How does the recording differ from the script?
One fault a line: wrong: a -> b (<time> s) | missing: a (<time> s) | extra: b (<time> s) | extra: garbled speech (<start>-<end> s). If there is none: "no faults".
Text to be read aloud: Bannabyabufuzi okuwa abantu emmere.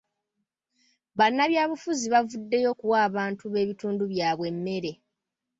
extra: bavuddeyo (2.1 s)
extra: b'ebitundu byabwe (3.5 s)